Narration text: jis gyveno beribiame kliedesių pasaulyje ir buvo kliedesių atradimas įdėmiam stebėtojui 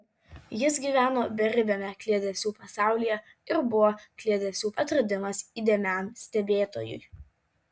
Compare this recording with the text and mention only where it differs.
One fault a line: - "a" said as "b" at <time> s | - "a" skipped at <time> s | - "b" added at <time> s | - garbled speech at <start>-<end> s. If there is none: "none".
none